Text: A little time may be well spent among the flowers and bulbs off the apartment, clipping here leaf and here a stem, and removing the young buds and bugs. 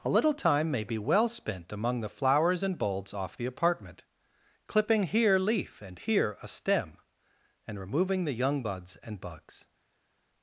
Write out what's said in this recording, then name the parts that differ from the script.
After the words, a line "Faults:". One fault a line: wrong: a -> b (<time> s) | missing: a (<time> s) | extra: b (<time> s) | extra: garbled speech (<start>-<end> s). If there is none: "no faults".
A little time may be well spent among the flowers and bulbs off the apartment, clipping here leaf and here a stem, and removing the young buds and bugs.
Faults:
no faults